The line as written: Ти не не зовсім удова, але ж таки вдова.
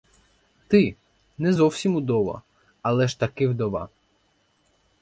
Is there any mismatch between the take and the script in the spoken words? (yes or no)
yes